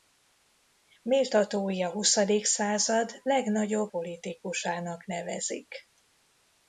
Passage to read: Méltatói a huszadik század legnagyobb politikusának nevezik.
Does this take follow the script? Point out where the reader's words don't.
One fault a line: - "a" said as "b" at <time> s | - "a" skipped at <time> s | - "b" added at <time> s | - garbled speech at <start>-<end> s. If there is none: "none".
none